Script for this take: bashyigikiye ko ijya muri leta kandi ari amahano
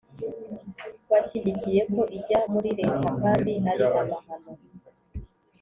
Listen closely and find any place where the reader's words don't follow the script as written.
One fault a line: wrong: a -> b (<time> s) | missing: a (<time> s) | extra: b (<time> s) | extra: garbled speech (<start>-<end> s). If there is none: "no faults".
no faults